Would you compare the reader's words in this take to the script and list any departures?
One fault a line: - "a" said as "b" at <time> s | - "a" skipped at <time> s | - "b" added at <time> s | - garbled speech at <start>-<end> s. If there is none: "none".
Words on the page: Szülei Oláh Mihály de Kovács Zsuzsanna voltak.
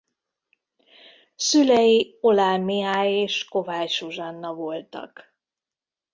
- "de" said as "és" at 3.1 s